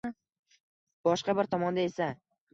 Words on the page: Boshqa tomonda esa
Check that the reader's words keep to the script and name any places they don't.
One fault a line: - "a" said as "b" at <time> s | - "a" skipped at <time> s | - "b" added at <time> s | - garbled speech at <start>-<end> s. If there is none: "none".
- "bir" added at 1.4 s